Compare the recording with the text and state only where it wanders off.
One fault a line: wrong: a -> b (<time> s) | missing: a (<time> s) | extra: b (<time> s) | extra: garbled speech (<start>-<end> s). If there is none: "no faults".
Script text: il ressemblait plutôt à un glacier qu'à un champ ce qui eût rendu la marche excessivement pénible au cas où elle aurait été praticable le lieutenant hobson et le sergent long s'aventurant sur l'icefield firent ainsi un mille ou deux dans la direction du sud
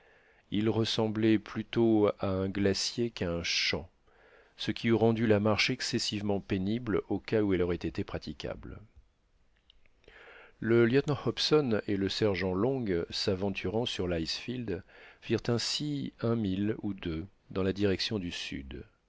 no faults